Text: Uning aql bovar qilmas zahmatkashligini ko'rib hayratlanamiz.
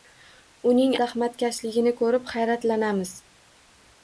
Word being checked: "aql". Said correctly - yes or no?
no